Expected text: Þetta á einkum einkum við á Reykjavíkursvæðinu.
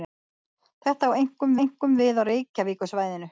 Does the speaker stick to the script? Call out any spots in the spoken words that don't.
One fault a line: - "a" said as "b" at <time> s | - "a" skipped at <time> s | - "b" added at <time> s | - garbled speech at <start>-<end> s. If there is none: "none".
none